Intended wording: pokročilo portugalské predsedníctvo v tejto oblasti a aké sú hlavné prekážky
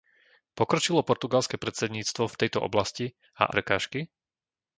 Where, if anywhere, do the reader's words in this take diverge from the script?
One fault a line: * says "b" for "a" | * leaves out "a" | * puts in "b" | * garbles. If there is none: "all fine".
* leaves out "aké sú hlavné"